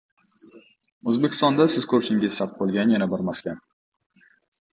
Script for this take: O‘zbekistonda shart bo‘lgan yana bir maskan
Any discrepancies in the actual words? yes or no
yes